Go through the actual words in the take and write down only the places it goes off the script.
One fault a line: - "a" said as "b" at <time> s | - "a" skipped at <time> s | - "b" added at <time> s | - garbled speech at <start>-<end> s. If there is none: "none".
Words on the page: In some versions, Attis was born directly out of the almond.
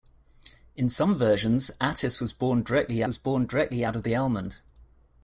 - "was born directly" added at 3.0 s